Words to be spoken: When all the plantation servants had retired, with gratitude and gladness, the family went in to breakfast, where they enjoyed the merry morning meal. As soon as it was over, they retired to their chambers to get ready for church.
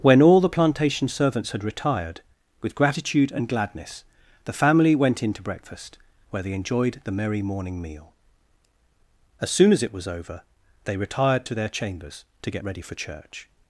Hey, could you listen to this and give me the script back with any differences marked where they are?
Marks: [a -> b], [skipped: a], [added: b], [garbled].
When all the plantation servants had retired, with gratitude and gladness, the family went in to breakfast, where they enjoyed the merry morning meal. As soon as it was over, they retired to their chambers to get ready for church.